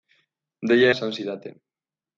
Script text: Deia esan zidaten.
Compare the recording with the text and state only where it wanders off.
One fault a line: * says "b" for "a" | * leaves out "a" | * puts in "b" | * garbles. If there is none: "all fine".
all fine